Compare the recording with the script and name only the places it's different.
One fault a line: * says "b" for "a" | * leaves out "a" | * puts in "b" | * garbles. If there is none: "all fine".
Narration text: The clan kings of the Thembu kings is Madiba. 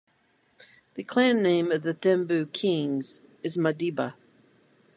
* says "name" for "kings"